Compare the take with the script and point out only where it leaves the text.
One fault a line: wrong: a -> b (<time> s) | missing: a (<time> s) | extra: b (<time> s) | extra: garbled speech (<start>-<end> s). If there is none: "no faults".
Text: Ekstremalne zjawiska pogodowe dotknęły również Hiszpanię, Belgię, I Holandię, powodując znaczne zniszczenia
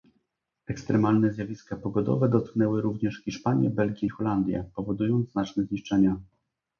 no faults